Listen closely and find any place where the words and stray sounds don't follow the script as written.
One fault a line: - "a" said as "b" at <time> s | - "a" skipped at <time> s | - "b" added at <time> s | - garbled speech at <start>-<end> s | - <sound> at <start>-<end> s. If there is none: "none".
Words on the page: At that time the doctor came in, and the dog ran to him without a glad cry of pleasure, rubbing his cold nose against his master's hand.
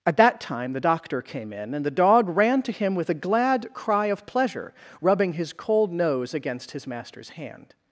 - "without" said as "with" at 3.0 s